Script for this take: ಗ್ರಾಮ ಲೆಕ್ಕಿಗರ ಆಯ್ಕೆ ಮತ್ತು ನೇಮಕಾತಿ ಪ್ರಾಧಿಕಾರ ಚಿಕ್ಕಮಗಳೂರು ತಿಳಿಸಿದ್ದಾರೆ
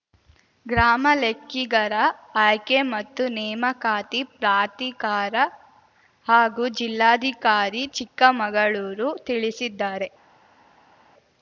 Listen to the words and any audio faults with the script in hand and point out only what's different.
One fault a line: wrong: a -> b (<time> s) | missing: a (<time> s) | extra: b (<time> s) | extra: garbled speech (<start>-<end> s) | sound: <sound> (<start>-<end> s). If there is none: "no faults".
extra: ಹಾಗೂ ಜಿಲ್ಲಾಧಿಕಾರಿ (6.3 s)